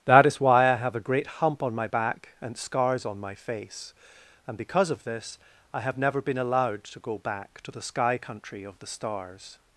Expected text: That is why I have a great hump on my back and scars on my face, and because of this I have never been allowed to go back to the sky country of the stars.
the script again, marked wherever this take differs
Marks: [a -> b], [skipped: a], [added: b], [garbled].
That is why I have a great hump on my back and scars on my face, and because of this I have never been allowed to go back to the sky country of the stars.